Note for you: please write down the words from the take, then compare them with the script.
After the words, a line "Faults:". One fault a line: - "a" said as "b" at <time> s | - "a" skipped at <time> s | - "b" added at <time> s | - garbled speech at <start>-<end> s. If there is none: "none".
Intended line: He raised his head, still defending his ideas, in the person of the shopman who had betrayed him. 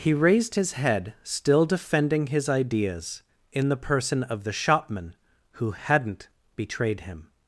He raised his head, still defending his ideas, in the person of the shopman who hadn't betrayed him.
Faults:
- "had" said as "hadn't" at 5.7 s